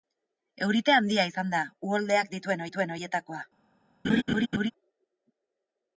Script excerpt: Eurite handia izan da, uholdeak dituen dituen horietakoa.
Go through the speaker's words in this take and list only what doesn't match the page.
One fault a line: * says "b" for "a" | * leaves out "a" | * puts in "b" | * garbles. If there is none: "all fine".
all fine